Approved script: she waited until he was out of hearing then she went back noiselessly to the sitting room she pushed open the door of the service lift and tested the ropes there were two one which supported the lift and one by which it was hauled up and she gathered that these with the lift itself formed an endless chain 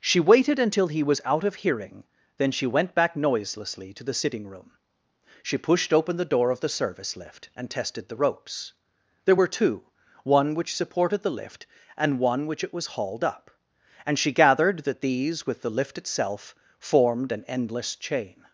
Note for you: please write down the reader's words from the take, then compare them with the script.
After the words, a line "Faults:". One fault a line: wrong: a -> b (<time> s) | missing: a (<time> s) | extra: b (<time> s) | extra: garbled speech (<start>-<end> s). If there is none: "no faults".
she waited until he was out of hearing then she went back noiselessly to the sitting room she pushed open the door of the service lift and tested the ropes there were two one which supported the lift and one which it was hauled up and she gathered that these with the lift itself formed an endless chain
Faults:
missing: by (12.5 s)